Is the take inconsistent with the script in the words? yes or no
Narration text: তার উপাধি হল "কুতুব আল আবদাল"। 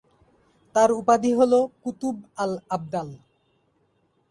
no